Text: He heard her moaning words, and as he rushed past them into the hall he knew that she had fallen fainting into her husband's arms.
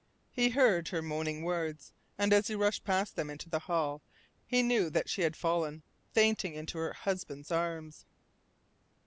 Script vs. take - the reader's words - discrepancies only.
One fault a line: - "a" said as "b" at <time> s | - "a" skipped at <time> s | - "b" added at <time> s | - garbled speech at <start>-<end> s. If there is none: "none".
none